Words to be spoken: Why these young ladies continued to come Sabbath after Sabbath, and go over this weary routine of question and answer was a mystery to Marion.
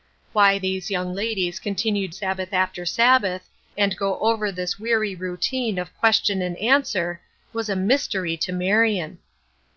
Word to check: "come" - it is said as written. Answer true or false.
false